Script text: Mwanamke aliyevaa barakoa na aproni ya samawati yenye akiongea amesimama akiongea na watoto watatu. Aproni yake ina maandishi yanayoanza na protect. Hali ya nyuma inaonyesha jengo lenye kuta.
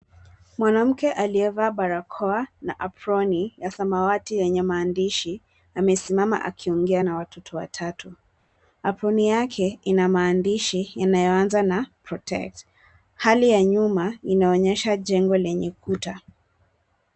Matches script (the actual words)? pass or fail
fail